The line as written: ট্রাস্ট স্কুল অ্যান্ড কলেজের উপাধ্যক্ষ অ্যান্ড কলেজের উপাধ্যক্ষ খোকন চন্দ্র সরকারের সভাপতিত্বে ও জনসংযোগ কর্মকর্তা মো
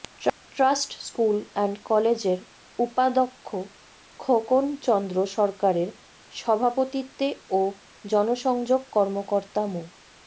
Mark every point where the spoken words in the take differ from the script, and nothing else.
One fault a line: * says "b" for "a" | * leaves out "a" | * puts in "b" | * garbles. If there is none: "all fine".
* leaves out "অ্যান্ড কলেজের উপাধ্যক্ষ"